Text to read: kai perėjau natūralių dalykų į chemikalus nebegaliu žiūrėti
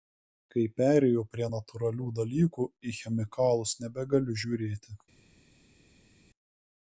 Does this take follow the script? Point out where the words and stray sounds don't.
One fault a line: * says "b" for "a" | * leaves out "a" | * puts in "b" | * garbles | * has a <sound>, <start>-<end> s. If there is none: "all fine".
* puts in "prie"